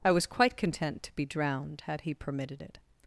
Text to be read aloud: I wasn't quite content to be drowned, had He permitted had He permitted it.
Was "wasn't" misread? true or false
true